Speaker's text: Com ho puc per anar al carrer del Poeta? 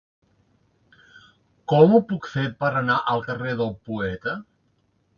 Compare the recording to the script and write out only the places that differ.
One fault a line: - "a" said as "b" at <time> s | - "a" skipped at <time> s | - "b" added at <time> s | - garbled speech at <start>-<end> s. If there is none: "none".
- "fer" added at 2.3 s